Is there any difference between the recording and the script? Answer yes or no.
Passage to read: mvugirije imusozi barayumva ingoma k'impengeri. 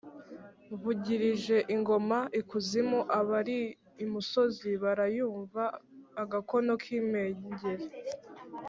yes